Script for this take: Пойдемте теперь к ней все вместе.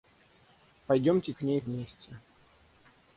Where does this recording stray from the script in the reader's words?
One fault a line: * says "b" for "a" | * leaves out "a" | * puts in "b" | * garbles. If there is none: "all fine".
* leaves out "теперь"
* leaves out "все"